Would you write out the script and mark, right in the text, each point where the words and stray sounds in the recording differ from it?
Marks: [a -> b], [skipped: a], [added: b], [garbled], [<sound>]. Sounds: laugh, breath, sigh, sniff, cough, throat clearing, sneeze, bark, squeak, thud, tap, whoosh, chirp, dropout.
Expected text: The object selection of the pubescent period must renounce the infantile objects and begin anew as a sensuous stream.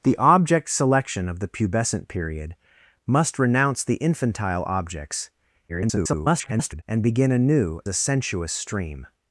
The object selection of the pubescent period must renounce the infantile objects [garbled] and begin anew [skipped: as] a sensuous stream.